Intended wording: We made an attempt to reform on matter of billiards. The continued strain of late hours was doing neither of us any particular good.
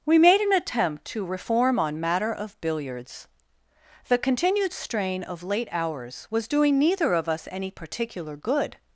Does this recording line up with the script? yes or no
yes